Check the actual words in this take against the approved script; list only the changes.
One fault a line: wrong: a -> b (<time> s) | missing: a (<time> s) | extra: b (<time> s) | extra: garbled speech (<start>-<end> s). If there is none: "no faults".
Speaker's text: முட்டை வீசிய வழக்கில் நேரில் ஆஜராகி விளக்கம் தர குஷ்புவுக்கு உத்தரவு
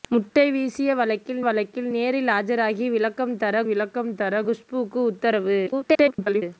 extra: வழக்கில் (1.4 s)
extra: விளக்கம் தர (3.6 s)
extra: garbled speech (5.7-6.4 s)